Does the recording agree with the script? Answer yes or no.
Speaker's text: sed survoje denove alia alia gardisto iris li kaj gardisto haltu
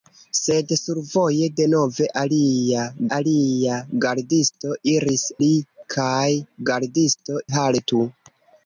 yes